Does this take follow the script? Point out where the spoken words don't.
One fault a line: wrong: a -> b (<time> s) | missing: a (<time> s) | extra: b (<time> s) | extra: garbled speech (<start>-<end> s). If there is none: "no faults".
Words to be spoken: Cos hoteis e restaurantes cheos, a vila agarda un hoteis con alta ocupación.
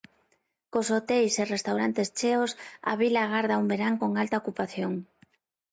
wrong: hoteis -> verán (3.7 s)